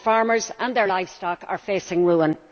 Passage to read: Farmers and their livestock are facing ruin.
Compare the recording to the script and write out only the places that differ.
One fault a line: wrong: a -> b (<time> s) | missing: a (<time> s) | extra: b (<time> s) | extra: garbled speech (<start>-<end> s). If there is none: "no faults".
no faults